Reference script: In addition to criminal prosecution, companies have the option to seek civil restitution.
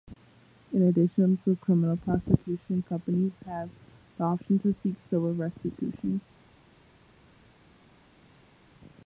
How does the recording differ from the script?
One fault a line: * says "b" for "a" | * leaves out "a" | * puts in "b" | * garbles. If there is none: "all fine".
all fine